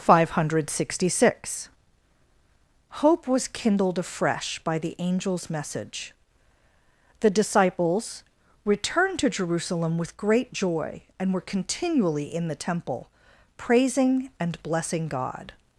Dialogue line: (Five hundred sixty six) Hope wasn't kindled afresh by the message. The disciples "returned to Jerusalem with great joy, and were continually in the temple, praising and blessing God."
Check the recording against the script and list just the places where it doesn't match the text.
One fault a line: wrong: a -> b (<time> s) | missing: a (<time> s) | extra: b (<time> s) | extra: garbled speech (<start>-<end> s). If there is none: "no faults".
wrong: wasn't -> was (3.3 s)
extra: angel's (5.0 s)